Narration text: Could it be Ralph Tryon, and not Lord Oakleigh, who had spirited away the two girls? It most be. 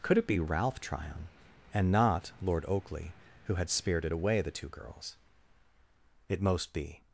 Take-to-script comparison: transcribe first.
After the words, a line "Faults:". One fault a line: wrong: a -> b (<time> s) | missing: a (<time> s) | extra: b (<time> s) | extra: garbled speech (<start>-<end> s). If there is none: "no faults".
Could it be Ralph Tryon, and not Lord Oakleigh, who had spirited away the two girls? It most be.
Faults:
no faults